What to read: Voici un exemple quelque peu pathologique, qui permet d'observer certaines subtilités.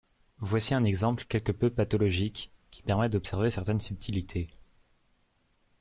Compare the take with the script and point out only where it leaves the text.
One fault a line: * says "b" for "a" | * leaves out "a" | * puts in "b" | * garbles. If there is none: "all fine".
all fine